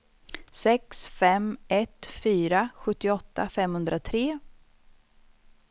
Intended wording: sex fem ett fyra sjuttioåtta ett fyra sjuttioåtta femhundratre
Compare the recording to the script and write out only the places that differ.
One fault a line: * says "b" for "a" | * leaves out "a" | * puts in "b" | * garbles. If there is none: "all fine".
* leaves out "ett fyra sjuttioåtta"